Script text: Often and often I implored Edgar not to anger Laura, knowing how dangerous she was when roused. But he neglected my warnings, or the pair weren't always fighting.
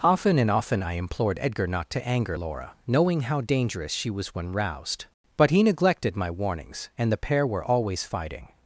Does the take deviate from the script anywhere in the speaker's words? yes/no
yes